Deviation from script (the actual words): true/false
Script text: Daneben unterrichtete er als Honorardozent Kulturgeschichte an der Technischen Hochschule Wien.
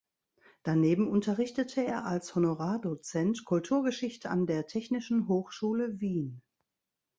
false